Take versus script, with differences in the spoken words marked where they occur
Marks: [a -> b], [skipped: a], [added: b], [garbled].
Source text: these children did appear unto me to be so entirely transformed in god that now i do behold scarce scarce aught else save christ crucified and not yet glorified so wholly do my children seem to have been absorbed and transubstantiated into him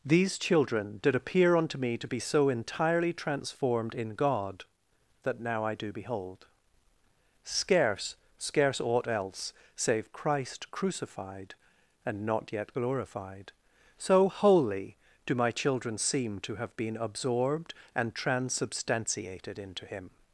these children did appear unto me to be so entirely transformed in god that now i do behold scarce scarce aught else save christ crucified and not yet glorified so wholly do my children seem to have been absorbed and transubstantiated into him